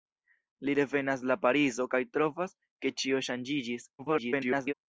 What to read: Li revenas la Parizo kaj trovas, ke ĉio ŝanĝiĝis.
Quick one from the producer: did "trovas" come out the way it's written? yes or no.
yes